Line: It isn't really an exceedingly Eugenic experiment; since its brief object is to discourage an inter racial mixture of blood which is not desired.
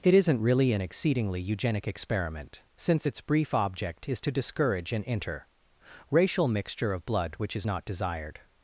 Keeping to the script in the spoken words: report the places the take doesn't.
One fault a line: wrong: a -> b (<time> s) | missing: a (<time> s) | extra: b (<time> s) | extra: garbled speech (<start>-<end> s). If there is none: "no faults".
no faults